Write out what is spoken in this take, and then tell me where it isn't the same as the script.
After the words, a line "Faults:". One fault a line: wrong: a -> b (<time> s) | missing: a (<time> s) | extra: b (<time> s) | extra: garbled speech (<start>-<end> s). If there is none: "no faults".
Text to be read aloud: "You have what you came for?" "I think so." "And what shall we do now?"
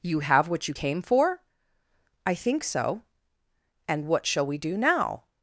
"You have what you came for?" "I think so." "And what shall we do now?"
Faults:
no faults